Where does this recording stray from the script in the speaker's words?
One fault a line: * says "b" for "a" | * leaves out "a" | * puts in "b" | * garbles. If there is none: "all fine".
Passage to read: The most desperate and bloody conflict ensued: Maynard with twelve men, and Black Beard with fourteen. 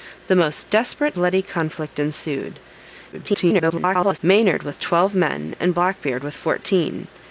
* leaves out "and"
* garbles